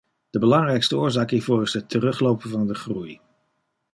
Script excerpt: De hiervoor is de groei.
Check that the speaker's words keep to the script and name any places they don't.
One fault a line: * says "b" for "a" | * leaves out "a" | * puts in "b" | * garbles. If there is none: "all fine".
* puts in "belangrijkste oorzaak"
* puts in "het teruglopen van"